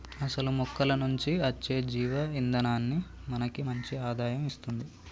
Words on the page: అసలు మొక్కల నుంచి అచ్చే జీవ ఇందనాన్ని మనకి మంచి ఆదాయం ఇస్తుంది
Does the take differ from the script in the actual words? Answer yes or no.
no